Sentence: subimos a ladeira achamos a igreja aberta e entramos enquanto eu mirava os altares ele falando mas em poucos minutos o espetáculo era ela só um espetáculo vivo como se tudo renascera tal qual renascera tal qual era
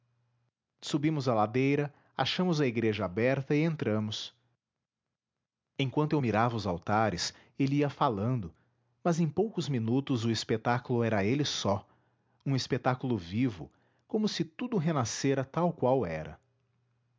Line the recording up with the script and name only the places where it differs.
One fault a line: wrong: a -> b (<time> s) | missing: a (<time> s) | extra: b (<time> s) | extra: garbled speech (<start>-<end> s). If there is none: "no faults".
extra: ia (7.8 s)
wrong: ela -> ele (11.2 s)
missing: renascera tal qual (16.0 s)